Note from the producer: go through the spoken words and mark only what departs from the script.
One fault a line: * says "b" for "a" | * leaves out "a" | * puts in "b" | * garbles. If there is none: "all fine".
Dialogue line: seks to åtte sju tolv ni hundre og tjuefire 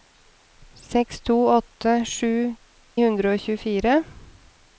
* leaves out "tolv ni"